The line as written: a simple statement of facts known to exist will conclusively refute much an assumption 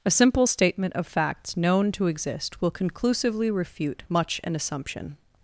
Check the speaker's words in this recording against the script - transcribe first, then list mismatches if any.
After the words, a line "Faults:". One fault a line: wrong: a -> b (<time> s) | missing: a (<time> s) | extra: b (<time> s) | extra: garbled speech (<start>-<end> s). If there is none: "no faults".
a simple statement of facts known to exist will conclusively refute much an assumption
Faults:
no faults